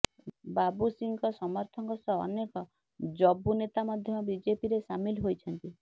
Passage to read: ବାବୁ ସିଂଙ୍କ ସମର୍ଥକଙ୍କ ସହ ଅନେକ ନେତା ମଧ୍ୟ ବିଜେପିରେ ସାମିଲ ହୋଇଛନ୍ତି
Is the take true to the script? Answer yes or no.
no